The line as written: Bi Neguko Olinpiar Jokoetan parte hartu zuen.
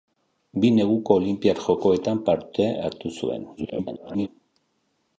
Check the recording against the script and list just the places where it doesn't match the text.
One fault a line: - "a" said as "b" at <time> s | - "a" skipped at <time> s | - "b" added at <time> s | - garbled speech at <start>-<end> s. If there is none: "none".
- garbled speech at 3.6-4.3 s